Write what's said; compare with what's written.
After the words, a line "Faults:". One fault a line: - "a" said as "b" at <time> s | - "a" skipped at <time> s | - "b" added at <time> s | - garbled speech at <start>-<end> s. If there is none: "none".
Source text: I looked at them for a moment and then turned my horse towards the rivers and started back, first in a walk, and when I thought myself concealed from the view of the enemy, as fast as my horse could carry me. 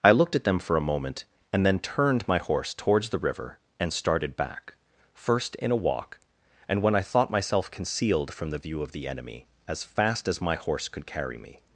I looked at them for a moment and then turned my horse towards the river and started back, first in a walk, and when I thought myself concealed from the view of the enemy, as fast as my horse could carry me.
Faults:
- "rivers" said as "river" at 3.2 s